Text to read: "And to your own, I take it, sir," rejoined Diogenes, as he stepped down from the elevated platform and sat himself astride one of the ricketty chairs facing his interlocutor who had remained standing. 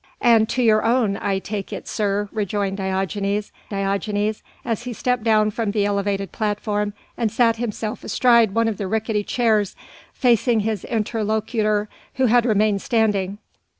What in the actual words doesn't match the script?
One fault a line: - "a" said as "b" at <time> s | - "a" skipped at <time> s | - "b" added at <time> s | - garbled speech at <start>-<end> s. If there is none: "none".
- "Diogenes" added at 3.7 s